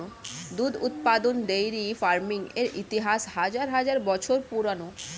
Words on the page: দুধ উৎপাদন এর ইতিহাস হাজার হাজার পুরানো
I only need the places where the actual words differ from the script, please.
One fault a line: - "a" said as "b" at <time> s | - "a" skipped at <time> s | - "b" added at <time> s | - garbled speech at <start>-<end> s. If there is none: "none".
- "ডেইরি ফার্মিং" added at 1.4 s
- "বছর" added at 4.1 s